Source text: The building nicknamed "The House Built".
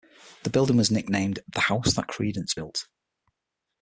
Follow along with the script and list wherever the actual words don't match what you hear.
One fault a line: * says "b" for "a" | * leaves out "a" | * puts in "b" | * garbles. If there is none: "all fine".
* puts in "was"
* puts in "That Creedence"